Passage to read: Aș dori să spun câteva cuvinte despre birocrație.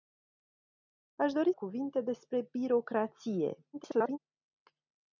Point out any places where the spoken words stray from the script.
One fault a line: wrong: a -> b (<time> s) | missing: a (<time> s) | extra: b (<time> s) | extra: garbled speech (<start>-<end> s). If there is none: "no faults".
missing: să spun câteva (1.5 s)
extra: garbled speech (3.7-4.2 s)